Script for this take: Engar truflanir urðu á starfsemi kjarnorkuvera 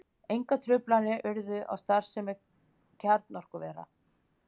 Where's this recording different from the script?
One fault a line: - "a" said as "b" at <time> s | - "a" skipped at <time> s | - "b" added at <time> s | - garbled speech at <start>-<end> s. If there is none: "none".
none